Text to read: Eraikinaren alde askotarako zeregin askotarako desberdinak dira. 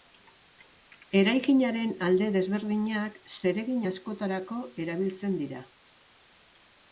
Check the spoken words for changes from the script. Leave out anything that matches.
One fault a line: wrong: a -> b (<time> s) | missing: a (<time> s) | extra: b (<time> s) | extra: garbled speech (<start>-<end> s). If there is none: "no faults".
wrong: askotarako -> desberdinak (2.4 s)
wrong: desberdinak -> erabiltzen (4.9 s)